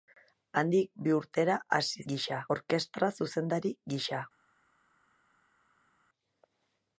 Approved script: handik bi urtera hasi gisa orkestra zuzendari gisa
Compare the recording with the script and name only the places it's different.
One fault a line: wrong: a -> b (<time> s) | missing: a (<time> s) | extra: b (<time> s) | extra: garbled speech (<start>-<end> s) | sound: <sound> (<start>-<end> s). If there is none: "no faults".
no faults